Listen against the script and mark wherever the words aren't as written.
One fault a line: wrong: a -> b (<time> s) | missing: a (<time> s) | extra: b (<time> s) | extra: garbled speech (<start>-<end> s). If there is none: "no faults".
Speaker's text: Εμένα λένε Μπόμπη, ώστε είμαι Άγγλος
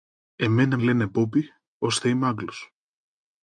no faults